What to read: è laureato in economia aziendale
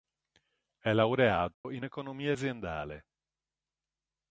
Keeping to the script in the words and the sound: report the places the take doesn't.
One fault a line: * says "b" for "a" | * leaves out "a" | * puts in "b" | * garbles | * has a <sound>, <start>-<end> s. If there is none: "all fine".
* has a dropout, 1.5-1.6 s